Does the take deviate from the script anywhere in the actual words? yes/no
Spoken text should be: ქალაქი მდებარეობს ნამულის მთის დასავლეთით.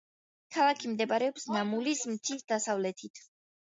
no